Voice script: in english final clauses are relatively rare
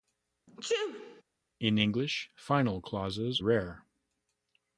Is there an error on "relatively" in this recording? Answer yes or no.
yes